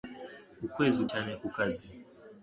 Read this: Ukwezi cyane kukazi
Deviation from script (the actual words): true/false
false